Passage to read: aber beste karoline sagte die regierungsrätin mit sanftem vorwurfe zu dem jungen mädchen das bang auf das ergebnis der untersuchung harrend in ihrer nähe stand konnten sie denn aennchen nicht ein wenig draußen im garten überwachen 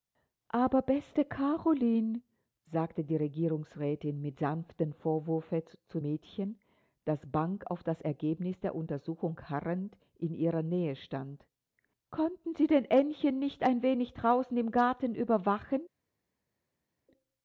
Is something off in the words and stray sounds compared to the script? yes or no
yes